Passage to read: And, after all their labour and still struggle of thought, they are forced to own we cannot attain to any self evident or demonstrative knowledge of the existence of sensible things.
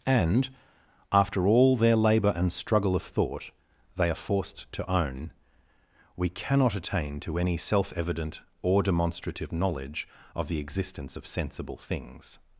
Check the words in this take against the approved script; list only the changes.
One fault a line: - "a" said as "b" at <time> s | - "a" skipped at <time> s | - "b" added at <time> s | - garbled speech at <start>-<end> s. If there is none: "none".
- "still" skipped at 2.5 s